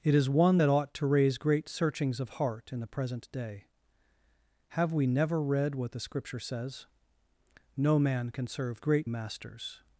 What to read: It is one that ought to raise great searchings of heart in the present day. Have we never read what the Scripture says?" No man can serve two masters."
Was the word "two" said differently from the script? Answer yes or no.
yes